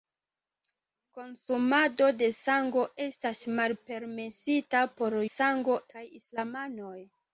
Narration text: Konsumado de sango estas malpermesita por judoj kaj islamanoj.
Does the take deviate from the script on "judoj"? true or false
true